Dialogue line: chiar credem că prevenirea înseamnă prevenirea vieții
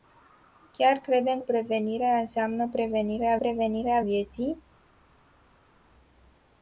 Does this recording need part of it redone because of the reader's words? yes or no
yes